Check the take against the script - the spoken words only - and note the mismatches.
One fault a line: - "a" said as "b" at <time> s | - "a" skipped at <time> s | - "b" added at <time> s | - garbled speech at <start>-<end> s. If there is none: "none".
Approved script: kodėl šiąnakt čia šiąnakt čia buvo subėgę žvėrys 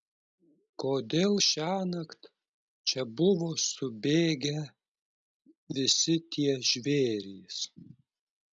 - "šiąnakt čia buvo subėgę" said as "buvo subėgę visi tie" at 3.2 s